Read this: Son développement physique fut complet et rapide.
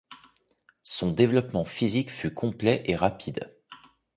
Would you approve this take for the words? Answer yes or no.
yes